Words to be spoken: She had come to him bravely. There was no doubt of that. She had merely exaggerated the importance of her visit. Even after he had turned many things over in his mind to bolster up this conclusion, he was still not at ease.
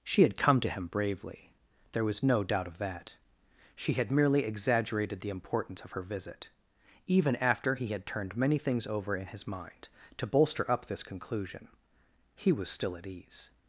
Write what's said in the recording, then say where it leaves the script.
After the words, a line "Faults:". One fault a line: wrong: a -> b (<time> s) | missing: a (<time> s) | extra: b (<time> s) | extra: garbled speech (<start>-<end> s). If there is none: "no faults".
She had come to him bravely. There was no doubt of that. She had merely exaggerated the importance of her visit. Even after he had turned many things over in his mind to bolster up this conclusion, he was still at ease.
Faults:
missing: not (13.0 s)